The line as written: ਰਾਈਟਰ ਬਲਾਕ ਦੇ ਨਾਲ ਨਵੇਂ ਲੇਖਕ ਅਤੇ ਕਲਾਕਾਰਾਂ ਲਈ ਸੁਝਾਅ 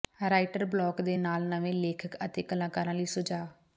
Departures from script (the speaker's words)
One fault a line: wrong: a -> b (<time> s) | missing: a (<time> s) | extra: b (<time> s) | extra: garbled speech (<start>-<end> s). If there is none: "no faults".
no faults